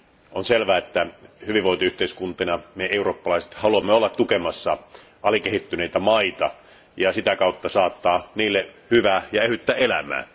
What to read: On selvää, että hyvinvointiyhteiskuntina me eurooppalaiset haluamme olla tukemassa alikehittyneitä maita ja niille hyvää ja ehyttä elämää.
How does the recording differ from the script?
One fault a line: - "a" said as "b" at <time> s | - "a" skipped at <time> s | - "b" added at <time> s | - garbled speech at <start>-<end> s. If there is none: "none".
- "sitä kautta saattaa" added at 7.1 s